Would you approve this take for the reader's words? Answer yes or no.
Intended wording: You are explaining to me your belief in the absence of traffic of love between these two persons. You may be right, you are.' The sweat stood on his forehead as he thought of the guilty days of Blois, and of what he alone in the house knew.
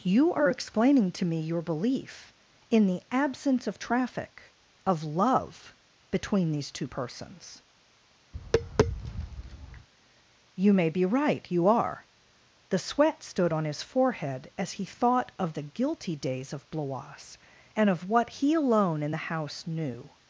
yes